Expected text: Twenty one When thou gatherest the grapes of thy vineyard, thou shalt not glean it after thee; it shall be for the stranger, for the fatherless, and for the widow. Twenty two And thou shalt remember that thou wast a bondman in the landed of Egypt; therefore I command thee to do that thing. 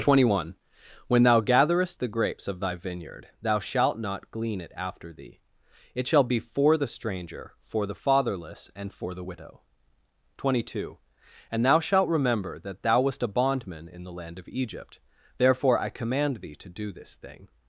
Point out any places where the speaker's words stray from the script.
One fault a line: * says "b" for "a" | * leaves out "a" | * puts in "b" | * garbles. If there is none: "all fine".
* says "land" for "landed"
* says "this" for "that"